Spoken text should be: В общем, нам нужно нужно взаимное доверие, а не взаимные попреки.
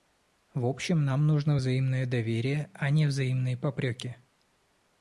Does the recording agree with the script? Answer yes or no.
no